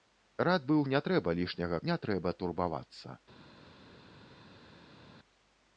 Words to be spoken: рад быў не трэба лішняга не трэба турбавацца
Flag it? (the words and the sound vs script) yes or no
no